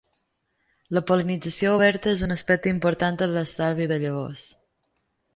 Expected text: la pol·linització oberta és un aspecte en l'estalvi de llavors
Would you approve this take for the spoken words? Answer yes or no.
no